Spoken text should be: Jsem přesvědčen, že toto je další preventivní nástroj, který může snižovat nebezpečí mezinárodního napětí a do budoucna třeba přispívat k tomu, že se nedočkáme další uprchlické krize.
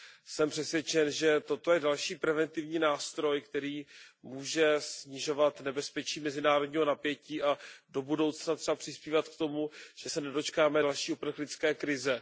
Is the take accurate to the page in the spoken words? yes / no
yes